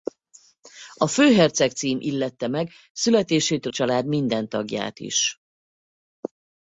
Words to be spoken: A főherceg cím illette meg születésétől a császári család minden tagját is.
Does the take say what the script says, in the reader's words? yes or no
no